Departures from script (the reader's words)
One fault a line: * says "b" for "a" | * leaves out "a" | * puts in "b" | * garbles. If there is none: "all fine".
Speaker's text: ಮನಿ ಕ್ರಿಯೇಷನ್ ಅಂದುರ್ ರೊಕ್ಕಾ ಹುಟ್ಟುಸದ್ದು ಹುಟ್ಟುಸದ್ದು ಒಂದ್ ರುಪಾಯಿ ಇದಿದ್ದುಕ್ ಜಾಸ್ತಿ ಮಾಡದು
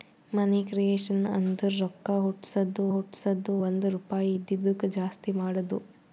all fine